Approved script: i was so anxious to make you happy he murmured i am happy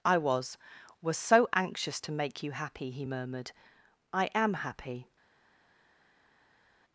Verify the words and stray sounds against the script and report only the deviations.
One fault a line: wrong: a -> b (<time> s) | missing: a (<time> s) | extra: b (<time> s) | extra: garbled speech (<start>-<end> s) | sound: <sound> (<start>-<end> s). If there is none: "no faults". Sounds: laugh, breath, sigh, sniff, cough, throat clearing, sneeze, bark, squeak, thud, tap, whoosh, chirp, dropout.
extra: was (1.0 s)